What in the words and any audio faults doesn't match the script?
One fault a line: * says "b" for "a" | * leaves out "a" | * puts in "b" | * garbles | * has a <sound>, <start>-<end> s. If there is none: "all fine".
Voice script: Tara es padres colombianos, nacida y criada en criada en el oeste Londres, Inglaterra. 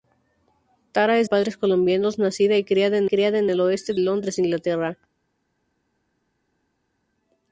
all fine